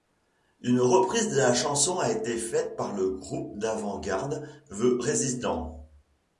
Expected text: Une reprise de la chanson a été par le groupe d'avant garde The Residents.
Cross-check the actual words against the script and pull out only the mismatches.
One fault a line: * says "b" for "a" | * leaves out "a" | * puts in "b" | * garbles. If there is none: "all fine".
* puts in "faite"